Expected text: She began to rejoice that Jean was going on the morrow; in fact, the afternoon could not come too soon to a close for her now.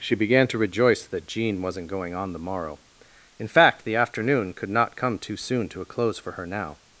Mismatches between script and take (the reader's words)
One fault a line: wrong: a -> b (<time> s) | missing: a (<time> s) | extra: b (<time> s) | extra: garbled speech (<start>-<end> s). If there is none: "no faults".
wrong: was -> wasn't (1.6 s)